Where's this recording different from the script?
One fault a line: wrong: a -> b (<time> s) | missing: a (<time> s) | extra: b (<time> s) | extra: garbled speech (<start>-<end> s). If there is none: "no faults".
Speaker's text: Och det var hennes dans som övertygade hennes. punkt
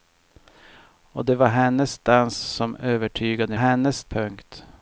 no faults